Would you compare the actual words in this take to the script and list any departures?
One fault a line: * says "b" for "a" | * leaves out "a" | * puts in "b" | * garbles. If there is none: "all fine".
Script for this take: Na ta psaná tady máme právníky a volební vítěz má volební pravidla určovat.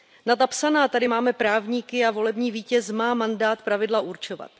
* says "mandát" for "volební"